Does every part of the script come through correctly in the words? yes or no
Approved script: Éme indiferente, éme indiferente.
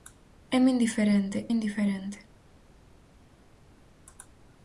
no